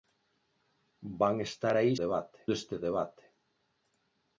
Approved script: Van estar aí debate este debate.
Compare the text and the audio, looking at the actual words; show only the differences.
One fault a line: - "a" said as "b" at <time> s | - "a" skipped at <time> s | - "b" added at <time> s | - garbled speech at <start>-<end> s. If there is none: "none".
none